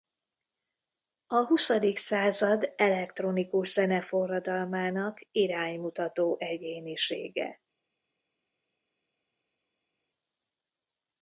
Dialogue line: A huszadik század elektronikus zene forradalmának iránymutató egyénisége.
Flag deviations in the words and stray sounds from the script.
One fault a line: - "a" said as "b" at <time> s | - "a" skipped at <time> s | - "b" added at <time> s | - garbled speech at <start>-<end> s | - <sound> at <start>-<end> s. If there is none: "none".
none